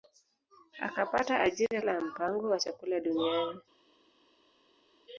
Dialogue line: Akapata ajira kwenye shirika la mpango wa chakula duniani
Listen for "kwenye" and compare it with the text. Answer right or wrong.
wrong